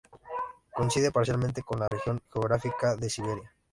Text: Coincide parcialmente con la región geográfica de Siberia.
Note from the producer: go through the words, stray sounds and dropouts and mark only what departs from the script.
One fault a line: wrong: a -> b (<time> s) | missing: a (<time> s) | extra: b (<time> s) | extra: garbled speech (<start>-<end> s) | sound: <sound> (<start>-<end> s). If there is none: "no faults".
sound: dropout (1.9-1.9 s)